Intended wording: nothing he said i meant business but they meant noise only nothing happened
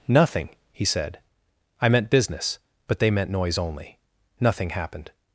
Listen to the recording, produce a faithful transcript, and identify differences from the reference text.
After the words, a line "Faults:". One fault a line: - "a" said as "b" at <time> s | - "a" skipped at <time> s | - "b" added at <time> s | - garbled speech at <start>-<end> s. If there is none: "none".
nothing he said i meant business but they meant noise only nothing happened
Faults:
none